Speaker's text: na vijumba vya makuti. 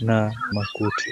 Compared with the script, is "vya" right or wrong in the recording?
wrong